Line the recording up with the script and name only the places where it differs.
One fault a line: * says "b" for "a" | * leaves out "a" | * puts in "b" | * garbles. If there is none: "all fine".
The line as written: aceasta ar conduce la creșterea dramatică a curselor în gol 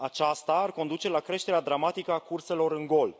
all fine